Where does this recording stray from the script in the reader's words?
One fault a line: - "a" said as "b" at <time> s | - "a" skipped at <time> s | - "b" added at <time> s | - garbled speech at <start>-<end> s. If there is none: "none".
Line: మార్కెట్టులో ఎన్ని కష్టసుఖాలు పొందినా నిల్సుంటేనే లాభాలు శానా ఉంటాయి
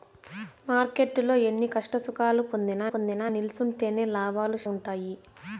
- "పొందినా" added at 2.9 s
- "శానా" skipped at 4.6 s